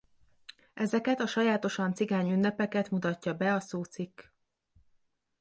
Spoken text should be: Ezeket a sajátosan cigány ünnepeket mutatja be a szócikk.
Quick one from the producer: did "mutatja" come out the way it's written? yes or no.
yes